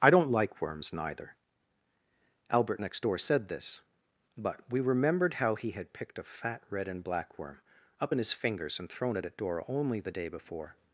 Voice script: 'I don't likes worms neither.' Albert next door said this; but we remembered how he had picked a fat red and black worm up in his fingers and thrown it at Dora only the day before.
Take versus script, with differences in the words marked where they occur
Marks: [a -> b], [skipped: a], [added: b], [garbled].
'I don't [likes -> like] worms neither.' Albert next door said this; but we remembered how he had picked a fat red and black worm up in his fingers and thrown it at Dora only the day before.